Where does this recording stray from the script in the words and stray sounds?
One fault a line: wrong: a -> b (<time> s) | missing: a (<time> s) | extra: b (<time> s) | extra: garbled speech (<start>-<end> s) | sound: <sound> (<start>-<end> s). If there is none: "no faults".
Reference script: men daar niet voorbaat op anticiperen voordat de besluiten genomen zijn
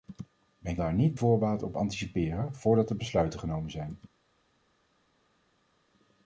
no faults